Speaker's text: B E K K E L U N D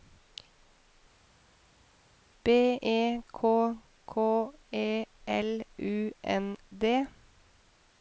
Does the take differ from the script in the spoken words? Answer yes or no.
no